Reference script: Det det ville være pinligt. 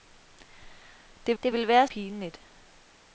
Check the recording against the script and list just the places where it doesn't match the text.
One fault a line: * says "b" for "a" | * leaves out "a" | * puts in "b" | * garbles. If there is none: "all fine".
all fine